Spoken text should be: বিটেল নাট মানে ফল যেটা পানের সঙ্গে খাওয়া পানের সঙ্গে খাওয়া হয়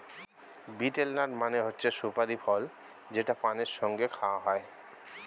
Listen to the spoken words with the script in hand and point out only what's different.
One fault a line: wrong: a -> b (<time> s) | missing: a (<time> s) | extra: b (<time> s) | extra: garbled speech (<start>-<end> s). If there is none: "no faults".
extra: হচ্ছে সুপারি (1.6 s)
missing: পানের সঙ্গে খাওয়া (4.4 s)